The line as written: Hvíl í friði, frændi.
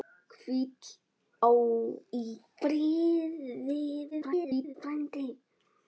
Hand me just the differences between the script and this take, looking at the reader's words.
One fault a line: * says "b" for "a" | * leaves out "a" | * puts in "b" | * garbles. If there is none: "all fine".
* garbles